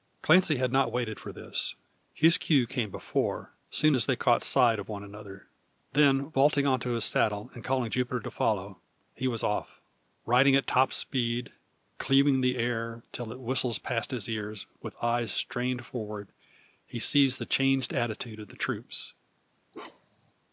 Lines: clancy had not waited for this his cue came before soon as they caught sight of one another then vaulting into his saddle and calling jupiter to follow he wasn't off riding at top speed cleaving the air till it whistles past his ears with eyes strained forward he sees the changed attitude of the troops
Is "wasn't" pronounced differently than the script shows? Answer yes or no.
yes